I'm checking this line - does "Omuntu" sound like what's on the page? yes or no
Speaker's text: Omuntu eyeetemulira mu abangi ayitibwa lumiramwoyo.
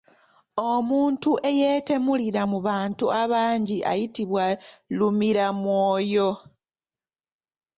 yes